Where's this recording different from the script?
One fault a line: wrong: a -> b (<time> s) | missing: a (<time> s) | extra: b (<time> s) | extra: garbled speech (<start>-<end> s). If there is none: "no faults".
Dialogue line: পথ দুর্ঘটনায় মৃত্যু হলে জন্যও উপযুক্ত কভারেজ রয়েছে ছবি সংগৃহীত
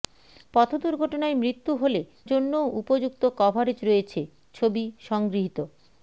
no faults